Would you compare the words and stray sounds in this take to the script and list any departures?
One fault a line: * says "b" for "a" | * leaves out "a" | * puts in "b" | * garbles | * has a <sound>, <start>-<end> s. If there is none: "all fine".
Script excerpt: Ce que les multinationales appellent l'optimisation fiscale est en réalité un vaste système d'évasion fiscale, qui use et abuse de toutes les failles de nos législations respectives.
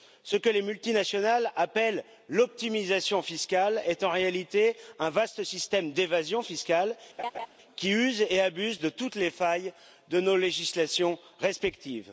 * has a laugh, 7.2-7.5 s